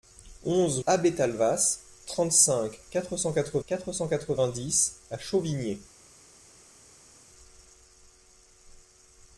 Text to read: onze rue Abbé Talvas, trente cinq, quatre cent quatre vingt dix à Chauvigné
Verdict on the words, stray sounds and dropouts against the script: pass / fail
fail